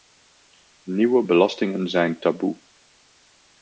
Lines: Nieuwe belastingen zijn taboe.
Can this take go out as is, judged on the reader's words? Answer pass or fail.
pass